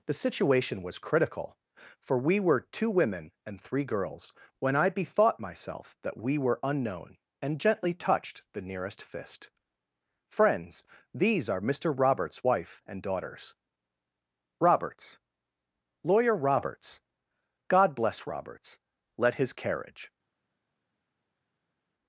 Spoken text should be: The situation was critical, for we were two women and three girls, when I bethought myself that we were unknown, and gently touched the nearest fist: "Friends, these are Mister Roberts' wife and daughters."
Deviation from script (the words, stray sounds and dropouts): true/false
true